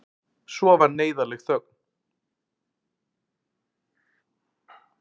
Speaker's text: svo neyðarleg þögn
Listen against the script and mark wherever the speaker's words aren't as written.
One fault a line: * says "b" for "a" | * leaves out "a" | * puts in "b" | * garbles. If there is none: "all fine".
* puts in "varð"